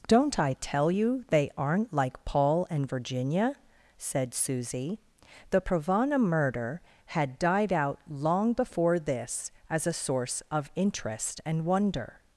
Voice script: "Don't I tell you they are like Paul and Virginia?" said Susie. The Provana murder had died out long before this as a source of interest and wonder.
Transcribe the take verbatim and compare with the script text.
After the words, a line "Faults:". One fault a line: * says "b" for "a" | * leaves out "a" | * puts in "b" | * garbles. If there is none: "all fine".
"Don't I tell you they aren't like Paul and Virginia?" said Susie. The Provana murder had died out long before this as a source of interest and wonder.
Faults:
* says "aren't" for "are"